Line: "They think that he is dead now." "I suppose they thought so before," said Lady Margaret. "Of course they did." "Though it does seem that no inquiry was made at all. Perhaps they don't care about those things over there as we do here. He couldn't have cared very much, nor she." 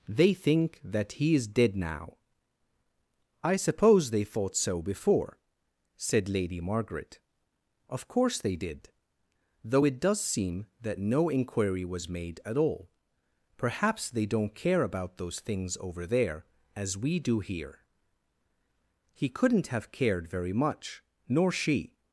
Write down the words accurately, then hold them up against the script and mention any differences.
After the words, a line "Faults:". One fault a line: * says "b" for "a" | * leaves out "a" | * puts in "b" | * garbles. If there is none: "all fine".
"They think that he is dead now." "I suppose they thought so before," said Lady Margaret. "Of course they did." "Though it does seem that no inquiry was made at all. Perhaps they don't care about those things over there as we do here. He couldn't have cared very much, nor she."
Faults:
all fine